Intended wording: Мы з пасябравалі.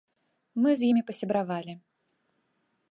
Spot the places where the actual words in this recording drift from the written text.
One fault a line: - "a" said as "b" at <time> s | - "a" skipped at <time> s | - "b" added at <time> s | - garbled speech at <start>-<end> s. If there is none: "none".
- "імі" added at 0.9 s